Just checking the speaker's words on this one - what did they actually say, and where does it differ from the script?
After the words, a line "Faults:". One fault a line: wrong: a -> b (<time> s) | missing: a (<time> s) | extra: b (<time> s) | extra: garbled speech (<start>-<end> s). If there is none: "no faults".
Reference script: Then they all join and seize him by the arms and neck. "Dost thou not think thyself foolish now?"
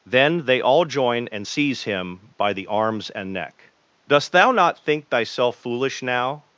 Then they all join and seize him by the arms and neck. "Dost thou not think thyself foolish now?"
Faults:
no faults